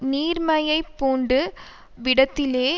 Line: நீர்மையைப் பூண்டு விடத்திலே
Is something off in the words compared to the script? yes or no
no